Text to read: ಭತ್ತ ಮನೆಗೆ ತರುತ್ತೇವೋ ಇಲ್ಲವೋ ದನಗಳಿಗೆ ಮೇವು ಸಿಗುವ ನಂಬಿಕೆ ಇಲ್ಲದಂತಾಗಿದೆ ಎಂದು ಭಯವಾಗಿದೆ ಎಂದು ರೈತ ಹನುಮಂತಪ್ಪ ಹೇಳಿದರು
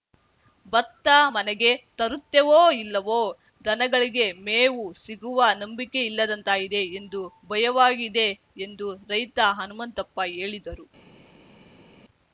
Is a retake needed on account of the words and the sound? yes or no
no